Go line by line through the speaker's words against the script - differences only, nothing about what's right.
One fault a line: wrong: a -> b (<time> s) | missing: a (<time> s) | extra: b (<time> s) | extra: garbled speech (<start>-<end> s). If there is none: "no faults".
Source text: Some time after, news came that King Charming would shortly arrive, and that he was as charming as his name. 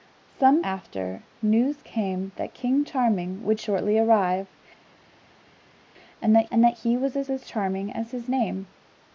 missing: time (0.6 s)
extra: and that (6.5 s)
extra: as (7.3 s)